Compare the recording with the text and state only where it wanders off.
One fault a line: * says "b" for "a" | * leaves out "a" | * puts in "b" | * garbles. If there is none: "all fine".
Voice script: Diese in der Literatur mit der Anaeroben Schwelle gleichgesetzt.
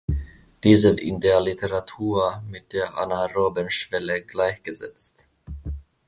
all fine